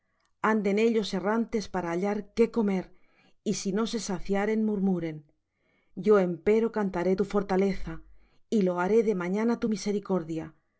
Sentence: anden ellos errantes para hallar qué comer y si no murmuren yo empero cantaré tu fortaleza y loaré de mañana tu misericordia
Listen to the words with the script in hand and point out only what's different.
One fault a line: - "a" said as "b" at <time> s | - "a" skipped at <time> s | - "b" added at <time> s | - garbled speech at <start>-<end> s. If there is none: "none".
- "se saciaren" added at 3.9 s